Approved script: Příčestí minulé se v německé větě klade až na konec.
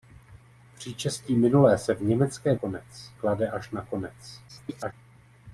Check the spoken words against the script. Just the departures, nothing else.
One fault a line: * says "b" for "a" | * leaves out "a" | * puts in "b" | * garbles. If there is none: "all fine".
* says "konec" for "větě"
* garbles